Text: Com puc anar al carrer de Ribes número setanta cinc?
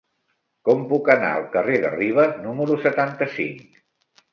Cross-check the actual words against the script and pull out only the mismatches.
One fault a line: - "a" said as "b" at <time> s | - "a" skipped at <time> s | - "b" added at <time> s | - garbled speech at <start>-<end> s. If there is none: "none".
none